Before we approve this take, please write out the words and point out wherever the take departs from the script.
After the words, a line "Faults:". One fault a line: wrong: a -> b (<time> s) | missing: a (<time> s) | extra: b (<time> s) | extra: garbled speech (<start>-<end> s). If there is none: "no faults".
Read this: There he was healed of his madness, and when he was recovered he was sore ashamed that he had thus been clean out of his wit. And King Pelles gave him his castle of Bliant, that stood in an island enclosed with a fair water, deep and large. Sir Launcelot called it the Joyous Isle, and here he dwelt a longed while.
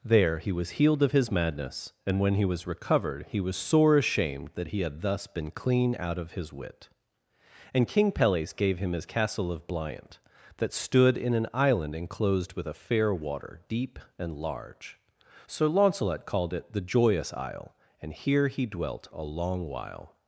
There he was healed of his madness, and when he was recovered he was sore ashamed that he had thus been clean out of his wit. And King Pelles gave him his castle of Bliant, that stood in an island enclosed with a fair water, deep and large. Sir Launcelot called it the Joyous Isle, and here he dwelt a long while.
Faults:
wrong: longed -> long (19.2 s)